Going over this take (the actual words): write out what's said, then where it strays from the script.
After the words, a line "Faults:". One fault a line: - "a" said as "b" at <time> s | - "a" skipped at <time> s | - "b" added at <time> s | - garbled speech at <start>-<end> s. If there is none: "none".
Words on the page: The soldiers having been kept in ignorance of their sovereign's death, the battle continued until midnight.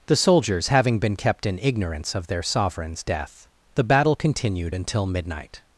The soldiers having been kept in ignorance of their sovereign's death, the battle continued until midnight.
Faults:
none